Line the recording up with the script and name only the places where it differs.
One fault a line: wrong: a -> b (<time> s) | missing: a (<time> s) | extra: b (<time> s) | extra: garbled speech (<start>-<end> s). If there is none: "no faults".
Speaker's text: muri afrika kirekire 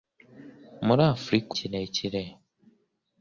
no faults